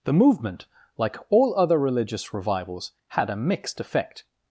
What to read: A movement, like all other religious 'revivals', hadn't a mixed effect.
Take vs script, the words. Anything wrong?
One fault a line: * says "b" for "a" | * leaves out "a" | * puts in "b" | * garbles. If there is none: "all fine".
* says "The" for "A"
* says "had" for "hadn't"